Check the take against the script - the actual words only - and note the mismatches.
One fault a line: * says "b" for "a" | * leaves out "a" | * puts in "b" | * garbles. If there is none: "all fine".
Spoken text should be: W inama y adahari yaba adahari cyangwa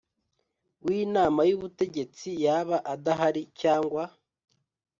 * says "ubutegetsi" for "adahari"